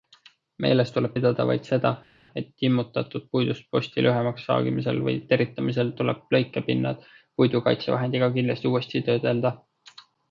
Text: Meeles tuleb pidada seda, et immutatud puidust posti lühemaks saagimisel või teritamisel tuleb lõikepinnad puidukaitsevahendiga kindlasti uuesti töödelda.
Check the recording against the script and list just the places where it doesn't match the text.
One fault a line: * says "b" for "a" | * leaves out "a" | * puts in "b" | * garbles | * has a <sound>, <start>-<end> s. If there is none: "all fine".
* puts in "vaid"